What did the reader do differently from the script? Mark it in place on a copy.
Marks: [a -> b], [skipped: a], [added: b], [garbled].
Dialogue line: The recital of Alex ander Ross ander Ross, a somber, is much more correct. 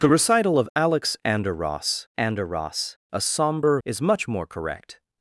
The recital of Alex ander Ross ander Ross, a somber, is much more correct.